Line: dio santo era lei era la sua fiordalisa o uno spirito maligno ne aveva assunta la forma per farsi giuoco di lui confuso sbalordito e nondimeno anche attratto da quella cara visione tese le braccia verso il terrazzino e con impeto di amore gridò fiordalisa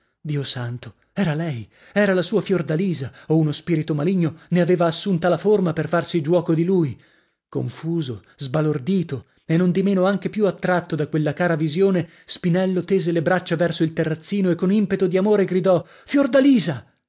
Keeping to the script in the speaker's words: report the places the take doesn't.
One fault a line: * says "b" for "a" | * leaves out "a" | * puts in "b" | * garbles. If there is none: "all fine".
* puts in "più"
* puts in "spinello"